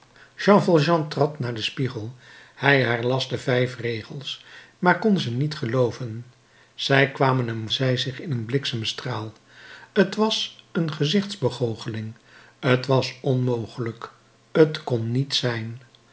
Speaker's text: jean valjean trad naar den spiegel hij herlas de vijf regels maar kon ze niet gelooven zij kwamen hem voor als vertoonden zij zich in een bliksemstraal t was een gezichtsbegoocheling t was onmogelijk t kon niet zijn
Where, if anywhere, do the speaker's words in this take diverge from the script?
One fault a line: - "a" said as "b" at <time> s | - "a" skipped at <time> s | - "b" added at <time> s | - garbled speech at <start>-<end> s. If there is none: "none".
- "voor als vertoonden" skipped at 7.7 s